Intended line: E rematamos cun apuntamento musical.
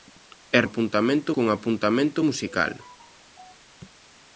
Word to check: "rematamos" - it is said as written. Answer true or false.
false